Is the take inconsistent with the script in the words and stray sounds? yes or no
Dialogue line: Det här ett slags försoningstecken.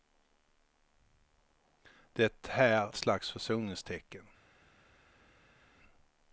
no